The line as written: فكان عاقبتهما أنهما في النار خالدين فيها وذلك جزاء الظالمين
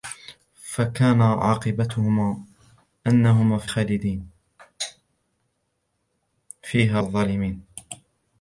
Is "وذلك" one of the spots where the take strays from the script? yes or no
yes